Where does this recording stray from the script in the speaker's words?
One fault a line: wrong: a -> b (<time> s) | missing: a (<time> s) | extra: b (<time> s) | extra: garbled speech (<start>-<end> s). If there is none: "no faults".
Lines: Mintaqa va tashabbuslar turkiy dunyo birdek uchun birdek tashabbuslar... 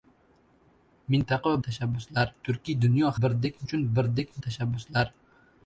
no faults